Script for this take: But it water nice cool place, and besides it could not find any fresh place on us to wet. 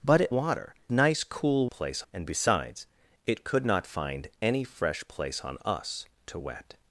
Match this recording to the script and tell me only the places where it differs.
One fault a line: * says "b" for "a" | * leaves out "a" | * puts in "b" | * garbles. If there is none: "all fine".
all fine